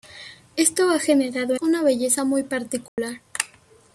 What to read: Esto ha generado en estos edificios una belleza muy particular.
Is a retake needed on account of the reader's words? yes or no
yes